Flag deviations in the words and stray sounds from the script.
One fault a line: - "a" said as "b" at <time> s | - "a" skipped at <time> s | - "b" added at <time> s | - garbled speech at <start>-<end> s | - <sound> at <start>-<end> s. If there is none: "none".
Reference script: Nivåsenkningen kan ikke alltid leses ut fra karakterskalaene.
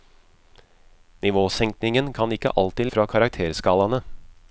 - "leses ut" skipped at 2.9 s